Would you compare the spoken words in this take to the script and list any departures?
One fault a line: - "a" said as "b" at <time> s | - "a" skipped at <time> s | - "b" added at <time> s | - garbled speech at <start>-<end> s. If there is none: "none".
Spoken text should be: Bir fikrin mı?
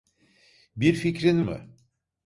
none